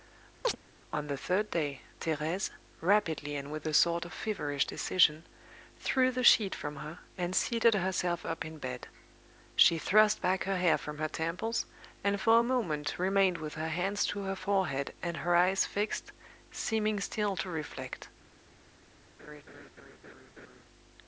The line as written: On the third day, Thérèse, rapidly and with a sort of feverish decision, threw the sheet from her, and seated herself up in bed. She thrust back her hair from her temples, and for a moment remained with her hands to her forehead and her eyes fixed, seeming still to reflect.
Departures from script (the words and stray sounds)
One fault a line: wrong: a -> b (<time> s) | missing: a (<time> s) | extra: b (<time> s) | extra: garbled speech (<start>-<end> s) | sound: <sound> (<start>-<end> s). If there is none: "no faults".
sound: chirp (0.4-0.6 s)
sound: laugh (19.2-20.6 s)